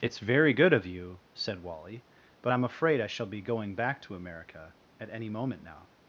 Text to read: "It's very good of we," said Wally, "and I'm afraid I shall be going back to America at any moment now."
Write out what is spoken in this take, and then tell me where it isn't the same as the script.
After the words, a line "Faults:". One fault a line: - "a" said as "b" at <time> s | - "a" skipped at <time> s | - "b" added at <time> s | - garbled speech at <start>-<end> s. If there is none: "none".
"It's very good of you," said Wally, "but I'm afraid I shall be going back to America at any moment now."
Faults:
- "we" said as "you" at 0.9 s
- "and" said as "but" at 2.4 s